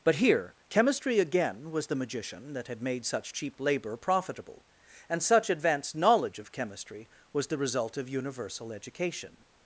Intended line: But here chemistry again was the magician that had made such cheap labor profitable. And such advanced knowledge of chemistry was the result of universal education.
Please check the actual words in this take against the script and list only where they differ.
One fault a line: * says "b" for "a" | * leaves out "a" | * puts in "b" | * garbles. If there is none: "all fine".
all fine